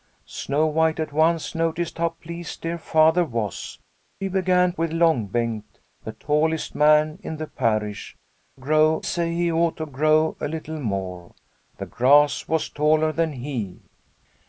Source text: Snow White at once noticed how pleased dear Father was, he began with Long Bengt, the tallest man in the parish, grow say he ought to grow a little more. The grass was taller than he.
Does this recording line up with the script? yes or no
yes